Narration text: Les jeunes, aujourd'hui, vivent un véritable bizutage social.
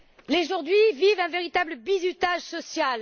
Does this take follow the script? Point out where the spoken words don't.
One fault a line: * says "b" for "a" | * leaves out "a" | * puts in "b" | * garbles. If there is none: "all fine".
* leaves out "jeunes"